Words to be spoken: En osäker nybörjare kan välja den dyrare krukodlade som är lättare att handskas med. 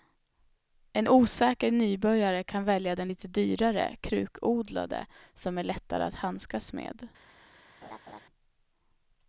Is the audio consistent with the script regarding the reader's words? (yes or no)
no